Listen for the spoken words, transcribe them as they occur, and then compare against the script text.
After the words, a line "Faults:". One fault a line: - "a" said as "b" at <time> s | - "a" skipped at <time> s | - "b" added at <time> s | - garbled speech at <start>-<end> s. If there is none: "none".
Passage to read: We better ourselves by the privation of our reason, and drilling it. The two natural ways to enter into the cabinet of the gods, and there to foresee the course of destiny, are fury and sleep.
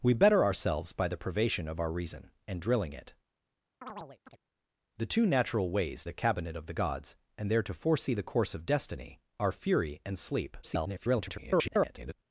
We better ourselves by the privation of our reason, and drilling it. The two natural ways the cabinet of the gods, and there to foresee the course of destiny, are fury and sleep. [garbled]
Faults:
- "to enter into" skipped at 6.0 s
- garbled speech at 10.6-12.1 s